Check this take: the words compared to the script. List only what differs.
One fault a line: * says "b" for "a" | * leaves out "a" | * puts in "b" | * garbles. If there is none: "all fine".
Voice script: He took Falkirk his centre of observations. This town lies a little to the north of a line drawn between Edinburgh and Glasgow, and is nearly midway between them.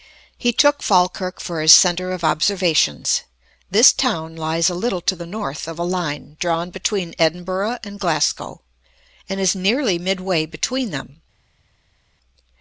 * puts in "for"